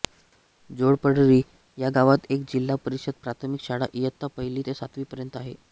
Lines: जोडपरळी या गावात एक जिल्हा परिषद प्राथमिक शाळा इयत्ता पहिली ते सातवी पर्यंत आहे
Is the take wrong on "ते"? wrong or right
right